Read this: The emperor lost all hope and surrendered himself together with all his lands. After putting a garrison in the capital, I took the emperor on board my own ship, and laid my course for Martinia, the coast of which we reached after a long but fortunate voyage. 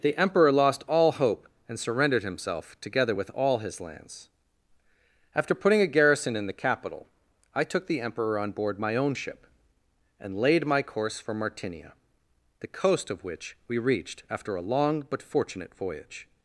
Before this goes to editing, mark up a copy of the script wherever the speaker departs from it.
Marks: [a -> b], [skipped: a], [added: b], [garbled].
The emperor lost all hope and surrendered himself together with all his lands. After putting a garrison in the capital, I took the emperor on board my own ship, and laid my course for Martinia, the coast of which we reached after a long but fortunate voyage.